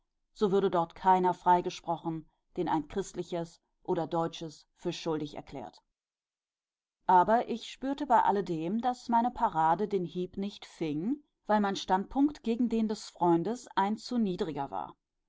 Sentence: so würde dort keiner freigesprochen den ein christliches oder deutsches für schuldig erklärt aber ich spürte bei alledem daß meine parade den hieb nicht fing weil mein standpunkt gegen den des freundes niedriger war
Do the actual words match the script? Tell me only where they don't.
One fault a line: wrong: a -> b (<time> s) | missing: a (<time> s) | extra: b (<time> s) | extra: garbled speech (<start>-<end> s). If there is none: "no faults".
extra: ein zu (13.7 s)